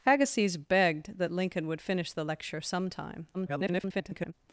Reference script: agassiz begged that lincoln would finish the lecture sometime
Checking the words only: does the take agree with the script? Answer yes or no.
no